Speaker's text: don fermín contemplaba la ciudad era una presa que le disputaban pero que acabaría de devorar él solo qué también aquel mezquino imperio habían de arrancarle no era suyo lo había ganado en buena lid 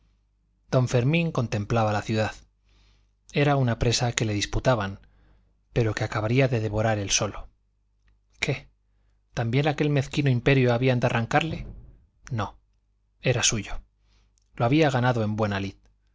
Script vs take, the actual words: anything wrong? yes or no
no